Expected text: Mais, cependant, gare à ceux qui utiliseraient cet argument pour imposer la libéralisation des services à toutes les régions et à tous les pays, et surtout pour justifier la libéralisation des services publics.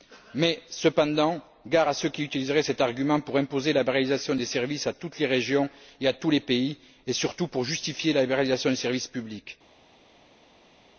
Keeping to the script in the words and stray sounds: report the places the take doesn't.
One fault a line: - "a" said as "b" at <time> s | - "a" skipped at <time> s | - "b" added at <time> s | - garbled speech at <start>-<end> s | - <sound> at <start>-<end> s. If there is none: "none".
none